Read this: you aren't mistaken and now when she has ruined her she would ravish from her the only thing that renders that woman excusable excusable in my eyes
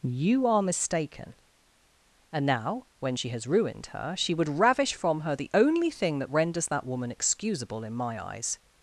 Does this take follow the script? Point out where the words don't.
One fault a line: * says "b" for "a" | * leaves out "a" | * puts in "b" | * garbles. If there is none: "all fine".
* says "are" for "aren't"
* leaves out "excusable"